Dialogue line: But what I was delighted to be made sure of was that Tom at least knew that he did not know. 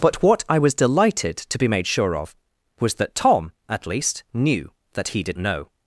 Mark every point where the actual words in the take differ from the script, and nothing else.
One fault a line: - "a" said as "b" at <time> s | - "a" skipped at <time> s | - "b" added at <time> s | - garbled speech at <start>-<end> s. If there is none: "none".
- "not" skipped at 5.4 s